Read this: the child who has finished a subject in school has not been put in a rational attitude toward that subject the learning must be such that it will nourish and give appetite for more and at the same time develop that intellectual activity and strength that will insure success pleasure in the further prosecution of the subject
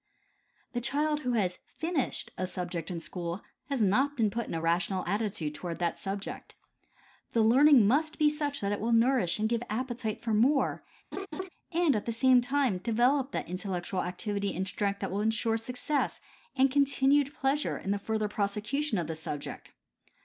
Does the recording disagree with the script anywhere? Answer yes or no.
yes